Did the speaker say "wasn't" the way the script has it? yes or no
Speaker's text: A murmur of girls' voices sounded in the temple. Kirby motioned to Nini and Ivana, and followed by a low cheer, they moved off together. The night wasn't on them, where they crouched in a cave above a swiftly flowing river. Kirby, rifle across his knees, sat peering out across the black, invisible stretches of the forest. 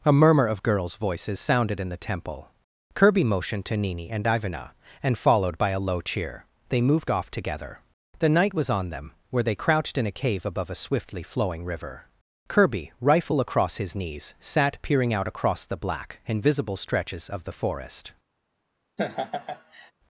no